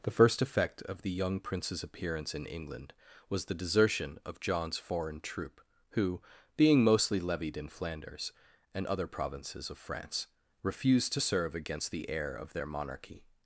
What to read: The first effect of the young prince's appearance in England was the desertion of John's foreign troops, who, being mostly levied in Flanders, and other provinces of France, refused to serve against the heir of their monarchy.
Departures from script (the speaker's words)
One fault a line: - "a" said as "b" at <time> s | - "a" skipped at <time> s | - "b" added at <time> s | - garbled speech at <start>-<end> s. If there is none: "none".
- "troops" said as "troop" at 5.2 s